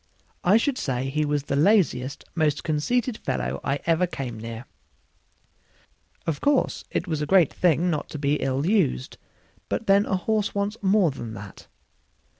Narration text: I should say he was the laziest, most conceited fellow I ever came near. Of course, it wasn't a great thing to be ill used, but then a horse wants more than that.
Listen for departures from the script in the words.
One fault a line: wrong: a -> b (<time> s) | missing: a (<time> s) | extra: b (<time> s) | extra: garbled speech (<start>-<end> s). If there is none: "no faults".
wrong: wasn't -> was (7.1 s)
extra: not (7.9 s)